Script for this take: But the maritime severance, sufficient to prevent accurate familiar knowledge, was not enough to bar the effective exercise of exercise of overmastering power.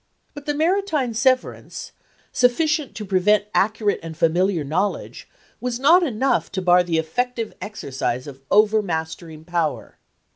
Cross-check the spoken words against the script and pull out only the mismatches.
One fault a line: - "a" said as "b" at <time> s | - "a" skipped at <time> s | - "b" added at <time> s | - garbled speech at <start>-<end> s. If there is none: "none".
- "and" added at 4.0 s
- "exercise of" skipped at 8.4 s